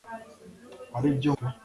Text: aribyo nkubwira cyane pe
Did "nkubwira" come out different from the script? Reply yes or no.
yes